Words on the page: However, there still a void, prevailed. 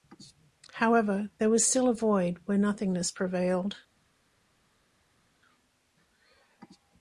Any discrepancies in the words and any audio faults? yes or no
yes